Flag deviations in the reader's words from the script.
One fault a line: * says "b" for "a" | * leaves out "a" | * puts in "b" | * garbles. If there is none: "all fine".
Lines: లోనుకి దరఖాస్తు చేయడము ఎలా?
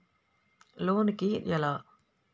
* leaves out "దరఖాస్తు చేయడము"